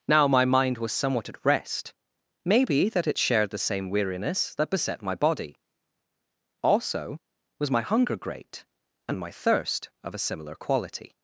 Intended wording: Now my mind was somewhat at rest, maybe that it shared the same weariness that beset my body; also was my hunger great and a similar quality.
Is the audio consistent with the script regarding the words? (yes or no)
no